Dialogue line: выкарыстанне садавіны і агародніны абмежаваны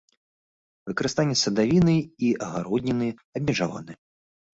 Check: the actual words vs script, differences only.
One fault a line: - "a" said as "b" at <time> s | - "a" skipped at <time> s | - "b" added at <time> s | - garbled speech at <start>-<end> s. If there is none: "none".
none